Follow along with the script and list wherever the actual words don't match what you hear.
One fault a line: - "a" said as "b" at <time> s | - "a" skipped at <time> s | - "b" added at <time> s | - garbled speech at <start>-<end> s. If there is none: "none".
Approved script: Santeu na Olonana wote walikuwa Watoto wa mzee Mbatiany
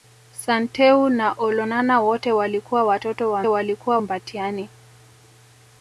- "mzee" said as "walikuwa" at 3.5 s